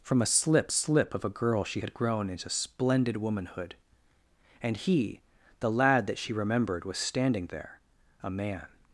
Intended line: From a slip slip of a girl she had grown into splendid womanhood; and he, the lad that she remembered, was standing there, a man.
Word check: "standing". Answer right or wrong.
right